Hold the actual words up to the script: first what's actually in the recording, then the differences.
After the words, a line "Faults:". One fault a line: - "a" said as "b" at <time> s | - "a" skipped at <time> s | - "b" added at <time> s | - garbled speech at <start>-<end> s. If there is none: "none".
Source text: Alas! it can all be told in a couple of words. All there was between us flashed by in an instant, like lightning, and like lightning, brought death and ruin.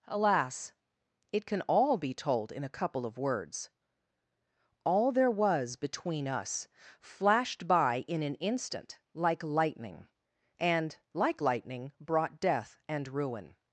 Alas! it can all be told in a couple of words. All there was between us flashed by in an instant, like lightning, and like lightning, brought death and ruin.
Faults:
none